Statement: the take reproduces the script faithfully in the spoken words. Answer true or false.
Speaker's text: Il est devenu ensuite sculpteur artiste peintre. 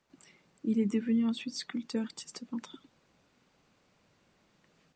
true